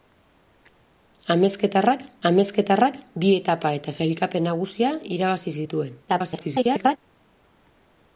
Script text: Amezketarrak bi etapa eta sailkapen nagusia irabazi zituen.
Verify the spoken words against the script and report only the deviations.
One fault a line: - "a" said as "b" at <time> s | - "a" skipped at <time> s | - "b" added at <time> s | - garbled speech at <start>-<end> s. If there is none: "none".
- "amezketarrak" added at 2.3 s
- garbled speech at 6.1-7.0 s